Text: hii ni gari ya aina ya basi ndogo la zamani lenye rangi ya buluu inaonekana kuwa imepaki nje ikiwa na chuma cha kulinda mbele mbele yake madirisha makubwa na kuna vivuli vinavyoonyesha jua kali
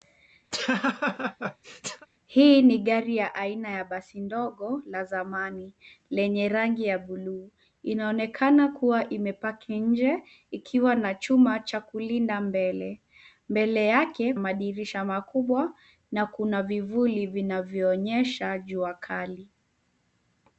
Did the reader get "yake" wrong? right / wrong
right